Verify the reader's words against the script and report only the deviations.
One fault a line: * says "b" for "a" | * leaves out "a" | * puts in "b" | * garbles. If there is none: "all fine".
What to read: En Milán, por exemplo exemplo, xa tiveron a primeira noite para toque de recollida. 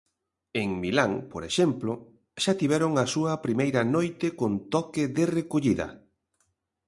* leaves out "exemplo"
* puts in "súa"
* says "con" for "para"